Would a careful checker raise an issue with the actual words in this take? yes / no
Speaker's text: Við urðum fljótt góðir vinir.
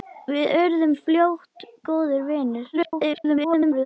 yes